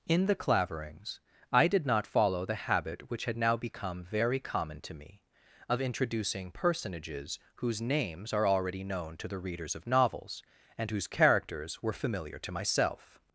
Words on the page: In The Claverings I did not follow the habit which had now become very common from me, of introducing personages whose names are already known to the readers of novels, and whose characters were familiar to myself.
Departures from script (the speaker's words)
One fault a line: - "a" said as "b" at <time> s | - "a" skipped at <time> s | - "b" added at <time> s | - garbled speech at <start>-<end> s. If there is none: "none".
- "from" said as "to" at 4.8 s